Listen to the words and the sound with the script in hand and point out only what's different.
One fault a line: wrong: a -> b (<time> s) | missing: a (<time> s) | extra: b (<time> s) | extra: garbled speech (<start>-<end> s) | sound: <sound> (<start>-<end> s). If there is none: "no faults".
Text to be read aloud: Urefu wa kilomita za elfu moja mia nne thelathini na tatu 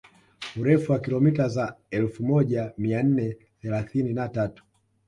no faults